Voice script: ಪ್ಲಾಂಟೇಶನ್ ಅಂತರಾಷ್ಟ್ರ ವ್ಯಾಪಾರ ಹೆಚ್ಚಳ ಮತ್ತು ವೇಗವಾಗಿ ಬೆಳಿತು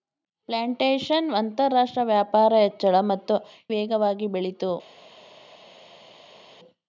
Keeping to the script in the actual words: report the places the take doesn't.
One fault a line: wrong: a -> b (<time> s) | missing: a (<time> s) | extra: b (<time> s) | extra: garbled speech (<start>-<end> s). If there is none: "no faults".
no faults